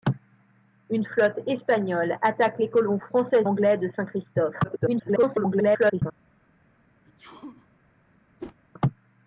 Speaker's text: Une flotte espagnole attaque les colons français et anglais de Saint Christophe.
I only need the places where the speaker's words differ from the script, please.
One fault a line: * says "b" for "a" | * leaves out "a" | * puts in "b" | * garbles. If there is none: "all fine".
* leaves out "et"
* garbles